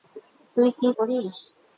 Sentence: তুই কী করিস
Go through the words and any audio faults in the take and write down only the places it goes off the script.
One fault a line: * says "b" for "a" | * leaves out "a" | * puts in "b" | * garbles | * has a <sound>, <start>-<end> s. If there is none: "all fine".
all fine